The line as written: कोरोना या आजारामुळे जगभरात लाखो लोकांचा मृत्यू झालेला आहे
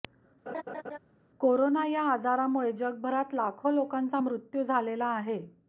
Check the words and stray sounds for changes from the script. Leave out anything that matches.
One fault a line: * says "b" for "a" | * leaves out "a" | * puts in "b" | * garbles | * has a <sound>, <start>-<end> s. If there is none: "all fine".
* has a laugh, 0.5-1.0 s